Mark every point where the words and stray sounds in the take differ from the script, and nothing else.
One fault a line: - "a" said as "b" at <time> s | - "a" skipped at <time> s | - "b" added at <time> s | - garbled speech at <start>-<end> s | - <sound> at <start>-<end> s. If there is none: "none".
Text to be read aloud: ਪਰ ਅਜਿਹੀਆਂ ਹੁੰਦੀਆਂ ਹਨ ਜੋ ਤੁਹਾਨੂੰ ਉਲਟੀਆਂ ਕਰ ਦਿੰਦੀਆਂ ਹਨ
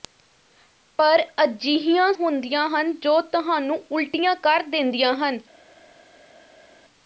none